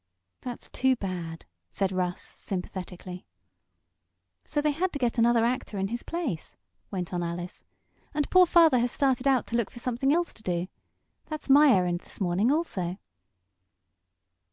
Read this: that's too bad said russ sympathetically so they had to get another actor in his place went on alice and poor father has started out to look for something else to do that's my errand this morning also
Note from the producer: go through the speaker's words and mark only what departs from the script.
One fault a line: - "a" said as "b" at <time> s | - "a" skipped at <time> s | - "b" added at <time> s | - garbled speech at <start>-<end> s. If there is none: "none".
none